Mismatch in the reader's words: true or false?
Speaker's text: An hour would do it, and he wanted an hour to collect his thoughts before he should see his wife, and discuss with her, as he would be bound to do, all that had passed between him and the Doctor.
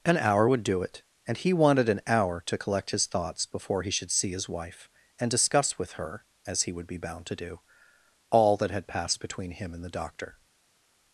false